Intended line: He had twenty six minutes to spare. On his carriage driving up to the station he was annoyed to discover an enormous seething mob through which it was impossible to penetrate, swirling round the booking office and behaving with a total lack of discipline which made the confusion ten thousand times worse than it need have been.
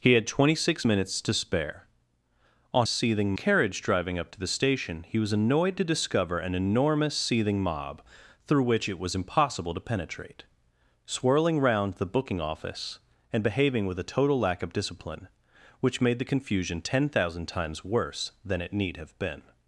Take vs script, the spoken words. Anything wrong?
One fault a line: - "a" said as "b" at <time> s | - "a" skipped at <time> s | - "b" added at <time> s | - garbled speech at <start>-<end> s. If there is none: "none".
- "his" said as "seething" at 2.9 s